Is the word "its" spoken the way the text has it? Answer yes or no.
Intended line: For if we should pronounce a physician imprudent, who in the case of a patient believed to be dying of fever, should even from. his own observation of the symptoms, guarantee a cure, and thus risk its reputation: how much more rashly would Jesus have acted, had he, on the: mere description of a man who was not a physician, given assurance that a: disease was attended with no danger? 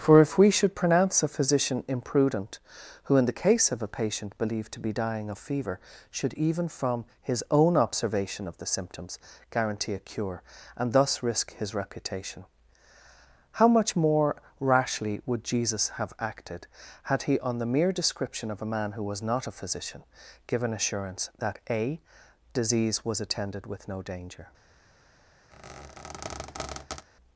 no